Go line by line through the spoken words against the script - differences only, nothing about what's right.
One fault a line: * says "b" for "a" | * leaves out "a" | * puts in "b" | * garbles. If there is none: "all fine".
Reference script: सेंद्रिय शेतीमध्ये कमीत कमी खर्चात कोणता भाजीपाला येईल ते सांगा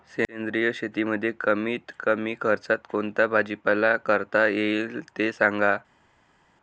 * puts in "करता"